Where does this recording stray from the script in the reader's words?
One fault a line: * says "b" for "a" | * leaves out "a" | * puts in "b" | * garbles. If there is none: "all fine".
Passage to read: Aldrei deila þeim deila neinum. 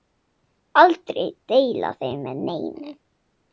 * says "með" for "deila"